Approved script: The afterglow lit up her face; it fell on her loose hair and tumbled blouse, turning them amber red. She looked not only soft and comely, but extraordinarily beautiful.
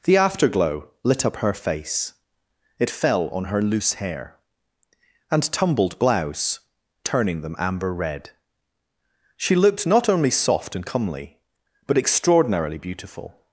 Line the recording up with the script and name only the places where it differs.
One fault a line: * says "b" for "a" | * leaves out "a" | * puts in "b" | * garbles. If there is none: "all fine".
all fine